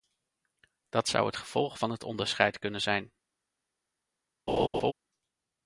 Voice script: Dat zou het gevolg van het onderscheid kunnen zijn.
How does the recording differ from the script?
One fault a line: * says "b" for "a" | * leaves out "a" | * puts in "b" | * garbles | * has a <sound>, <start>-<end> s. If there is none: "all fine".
* has a laugh, 4.5-4.9 s